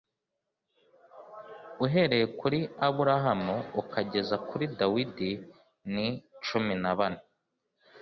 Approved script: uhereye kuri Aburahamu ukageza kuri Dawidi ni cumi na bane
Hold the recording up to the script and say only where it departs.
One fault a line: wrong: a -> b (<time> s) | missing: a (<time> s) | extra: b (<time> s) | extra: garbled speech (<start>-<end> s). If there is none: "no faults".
no faults